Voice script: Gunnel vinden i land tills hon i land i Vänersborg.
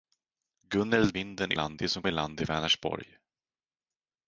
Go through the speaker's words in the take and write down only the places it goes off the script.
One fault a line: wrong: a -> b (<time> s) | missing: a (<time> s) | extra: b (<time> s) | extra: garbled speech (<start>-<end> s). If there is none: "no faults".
no faults